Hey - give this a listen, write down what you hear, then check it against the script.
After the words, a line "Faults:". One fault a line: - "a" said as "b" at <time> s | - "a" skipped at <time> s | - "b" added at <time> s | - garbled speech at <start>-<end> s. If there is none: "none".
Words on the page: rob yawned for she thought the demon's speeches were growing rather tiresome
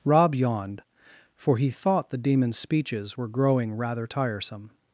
rob yawned for he thought the demon's speeches were growing rather tiresome
Faults:
- "she" said as "he" at 1.6 s